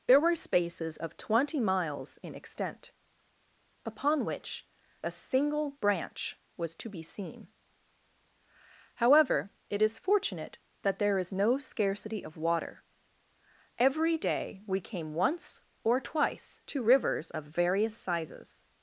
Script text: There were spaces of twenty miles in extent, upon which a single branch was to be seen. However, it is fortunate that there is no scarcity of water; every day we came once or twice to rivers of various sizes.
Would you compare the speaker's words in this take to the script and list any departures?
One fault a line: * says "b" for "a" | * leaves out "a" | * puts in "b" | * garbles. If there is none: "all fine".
all fine